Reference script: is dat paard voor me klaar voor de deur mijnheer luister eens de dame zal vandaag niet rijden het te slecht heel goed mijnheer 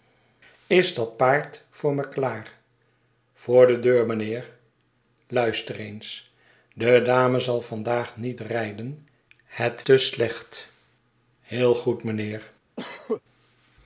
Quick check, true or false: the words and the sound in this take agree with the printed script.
false